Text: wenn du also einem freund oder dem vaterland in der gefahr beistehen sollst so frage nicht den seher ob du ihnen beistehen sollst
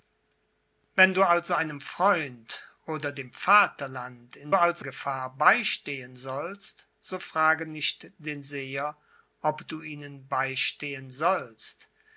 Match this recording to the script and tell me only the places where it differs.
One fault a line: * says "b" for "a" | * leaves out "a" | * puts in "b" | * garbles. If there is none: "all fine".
* says "also" for "der"